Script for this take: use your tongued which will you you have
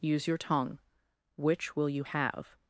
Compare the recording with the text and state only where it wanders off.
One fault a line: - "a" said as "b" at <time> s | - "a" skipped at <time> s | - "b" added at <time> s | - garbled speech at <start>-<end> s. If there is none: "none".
- "tongued" said as "tongue" at 0.4 s
- "you" skipped at 2.0 s